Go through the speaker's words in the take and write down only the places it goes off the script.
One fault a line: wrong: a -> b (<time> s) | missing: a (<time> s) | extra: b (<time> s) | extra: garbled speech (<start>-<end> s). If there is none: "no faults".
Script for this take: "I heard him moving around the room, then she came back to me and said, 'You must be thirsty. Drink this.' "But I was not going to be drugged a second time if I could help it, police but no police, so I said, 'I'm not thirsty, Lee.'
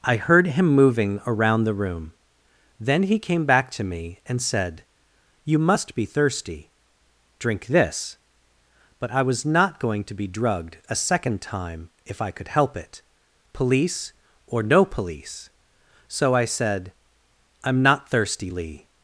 wrong: she -> he (3.0 s)
wrong: but -> or (14.5 s)